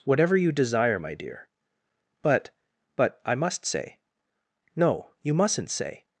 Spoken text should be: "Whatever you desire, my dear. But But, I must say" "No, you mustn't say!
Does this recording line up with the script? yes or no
yes